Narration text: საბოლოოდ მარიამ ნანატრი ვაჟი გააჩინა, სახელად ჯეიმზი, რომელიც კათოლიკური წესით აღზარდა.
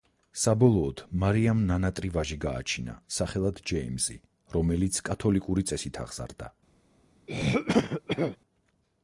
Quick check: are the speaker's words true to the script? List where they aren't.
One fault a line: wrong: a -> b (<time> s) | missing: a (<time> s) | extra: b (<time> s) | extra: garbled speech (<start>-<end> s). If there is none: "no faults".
no faults